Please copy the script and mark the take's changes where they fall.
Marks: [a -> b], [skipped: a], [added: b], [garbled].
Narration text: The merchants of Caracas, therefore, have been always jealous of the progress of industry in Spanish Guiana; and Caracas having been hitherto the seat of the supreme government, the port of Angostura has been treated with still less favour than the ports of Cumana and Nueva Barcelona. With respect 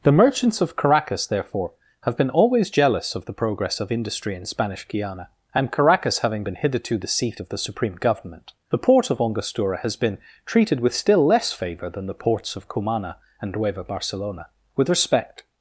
The merchants of Caracas, therefore, have been always jealous of the progress of industry in Spanish Guiana; and Caracas having been hitherto the seat of the supreme government, the port of Angostura has been treated with still less favour than the ports of Cumana and Nueva Barcelona. With respect